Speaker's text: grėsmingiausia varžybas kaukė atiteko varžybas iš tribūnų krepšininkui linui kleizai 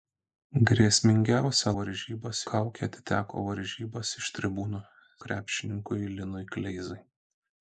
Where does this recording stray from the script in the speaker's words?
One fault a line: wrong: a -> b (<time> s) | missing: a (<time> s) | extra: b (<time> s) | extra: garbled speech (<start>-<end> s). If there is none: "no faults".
no faults